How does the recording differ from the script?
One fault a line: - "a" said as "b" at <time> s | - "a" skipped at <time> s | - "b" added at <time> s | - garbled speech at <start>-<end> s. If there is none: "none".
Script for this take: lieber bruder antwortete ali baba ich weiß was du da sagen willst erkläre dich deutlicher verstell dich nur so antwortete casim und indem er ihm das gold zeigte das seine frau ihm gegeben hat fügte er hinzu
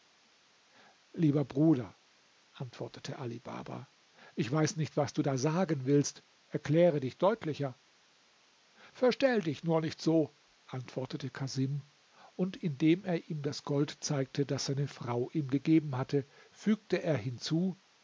- "nicht" added at 4.8 s
- "nicht" added at 9.8 s
- "hat" said as "hatte" at 16.0 s